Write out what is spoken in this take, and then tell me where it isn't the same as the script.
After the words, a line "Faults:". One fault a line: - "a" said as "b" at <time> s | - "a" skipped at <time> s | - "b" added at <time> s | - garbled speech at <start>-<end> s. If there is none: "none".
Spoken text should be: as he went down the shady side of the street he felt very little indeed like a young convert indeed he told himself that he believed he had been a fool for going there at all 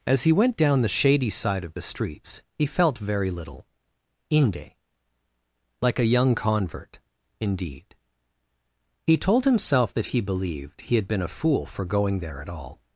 as he went down the shady side of the streets he felt very little inde like a young convert indeed he told himself that he believed he had been a fool for going there at all
Faults:
- "street" said as "streets" at 1.8 s
- "indeed" said as "inde" at 4.3 s